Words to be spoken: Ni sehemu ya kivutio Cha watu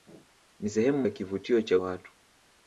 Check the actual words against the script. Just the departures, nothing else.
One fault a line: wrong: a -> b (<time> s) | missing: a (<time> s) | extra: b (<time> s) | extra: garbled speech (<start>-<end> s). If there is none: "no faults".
no faults